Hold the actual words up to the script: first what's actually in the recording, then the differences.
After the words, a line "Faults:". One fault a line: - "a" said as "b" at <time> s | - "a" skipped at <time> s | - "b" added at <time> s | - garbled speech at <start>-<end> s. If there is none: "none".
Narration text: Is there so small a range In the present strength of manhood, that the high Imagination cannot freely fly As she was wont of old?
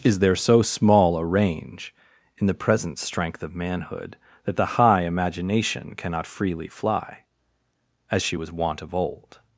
Is there so small a range In the present strength of manhood, that the high Imagination cannot freely fly As she was wont of old?
Faults:
none